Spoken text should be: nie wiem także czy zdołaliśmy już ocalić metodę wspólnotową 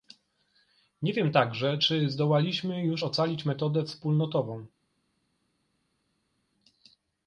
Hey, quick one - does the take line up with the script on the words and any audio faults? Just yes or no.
yes